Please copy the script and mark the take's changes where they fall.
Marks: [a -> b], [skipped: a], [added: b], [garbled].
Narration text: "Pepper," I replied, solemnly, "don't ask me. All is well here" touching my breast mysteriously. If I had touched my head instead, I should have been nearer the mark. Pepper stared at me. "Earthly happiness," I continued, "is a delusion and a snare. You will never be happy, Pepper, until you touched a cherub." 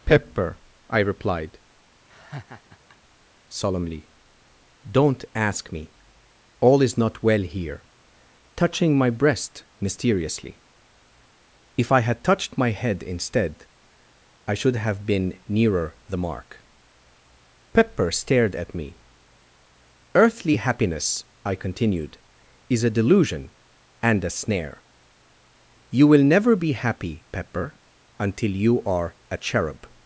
"Pepper," I replied, solemnly, "don't ask me. All is [added: not] well here" touching my breast mysteriously. If I had touched my head instead, I should have been nearer the mark. Pepper stared at me. "Earthly happiness," I continued, "is a delusion and a snare. You will never be happy, Pepper, until you [touched -> are] a cherub."